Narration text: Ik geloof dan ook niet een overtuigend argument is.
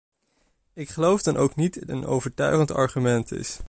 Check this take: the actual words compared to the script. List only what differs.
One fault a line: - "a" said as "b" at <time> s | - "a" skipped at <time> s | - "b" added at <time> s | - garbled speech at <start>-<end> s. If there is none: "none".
none